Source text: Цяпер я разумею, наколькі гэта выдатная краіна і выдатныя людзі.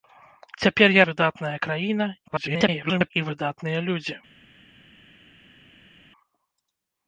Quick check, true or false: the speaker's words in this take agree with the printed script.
false